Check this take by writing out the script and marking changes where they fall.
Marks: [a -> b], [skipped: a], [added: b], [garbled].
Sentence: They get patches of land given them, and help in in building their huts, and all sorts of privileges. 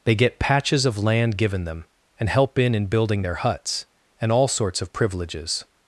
They get patches of land given them, and help in in building their huts, and all sorts of privileges.